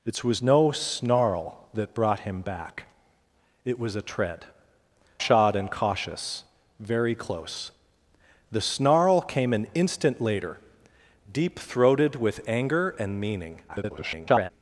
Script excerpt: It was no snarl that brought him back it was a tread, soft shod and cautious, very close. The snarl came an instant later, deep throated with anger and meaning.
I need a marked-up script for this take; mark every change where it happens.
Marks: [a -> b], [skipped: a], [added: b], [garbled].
It was no snarl that brought him back it was a tread, [skipped: soft] shod and cautious, very close. The snarl came an instant later, deep throated with anger and meaning. [garbled]